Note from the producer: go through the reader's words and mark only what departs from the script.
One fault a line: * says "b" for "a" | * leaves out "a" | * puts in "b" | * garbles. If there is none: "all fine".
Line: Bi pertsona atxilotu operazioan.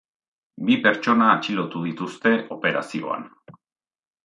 * puts in "dituzte"